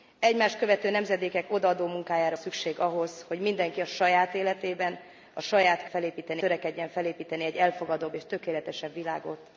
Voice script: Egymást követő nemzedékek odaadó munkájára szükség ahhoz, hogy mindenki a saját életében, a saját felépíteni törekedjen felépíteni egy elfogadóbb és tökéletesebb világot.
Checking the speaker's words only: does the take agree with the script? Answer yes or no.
yes